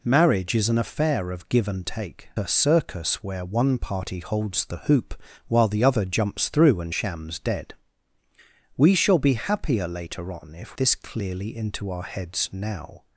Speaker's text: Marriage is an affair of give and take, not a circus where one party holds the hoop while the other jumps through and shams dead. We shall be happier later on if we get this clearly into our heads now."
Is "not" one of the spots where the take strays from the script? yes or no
yes